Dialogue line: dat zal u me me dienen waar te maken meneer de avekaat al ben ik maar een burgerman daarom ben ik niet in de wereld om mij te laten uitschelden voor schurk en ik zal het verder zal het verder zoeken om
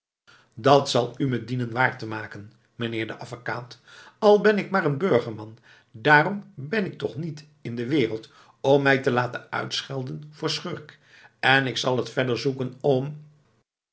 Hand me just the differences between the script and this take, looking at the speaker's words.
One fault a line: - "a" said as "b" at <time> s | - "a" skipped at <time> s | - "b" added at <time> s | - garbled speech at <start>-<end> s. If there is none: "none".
- "me" skipped at 1.4 s
- "toch" added at 7.0 s
- "zal het verder" skipped at 12.4 s